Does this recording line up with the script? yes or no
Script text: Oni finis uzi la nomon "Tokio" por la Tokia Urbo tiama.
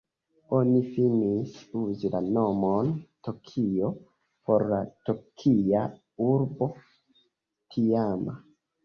yes